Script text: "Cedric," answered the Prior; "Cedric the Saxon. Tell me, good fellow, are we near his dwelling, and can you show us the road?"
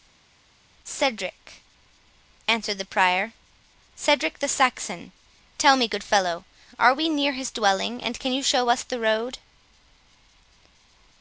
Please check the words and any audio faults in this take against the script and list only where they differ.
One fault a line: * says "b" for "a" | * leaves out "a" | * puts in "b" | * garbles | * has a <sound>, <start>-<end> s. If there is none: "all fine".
all fine